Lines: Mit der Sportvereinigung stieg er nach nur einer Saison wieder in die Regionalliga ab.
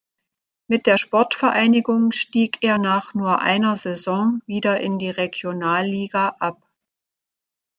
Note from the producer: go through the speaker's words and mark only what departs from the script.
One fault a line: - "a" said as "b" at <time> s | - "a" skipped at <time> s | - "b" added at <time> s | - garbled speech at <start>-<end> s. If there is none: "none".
none